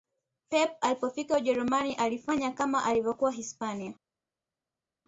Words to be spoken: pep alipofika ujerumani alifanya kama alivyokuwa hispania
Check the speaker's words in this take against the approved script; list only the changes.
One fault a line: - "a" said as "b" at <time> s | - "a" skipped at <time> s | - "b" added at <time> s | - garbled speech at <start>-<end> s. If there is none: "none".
none